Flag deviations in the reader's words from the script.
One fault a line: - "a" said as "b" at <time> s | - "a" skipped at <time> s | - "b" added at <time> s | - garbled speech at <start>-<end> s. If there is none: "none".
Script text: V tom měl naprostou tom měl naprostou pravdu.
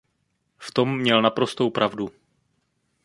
- "tom měl naprostou" skipped at 1.7 s